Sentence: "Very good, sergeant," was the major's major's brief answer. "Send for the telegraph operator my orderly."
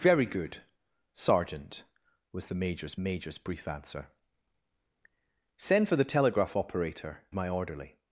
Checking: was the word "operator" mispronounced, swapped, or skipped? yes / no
no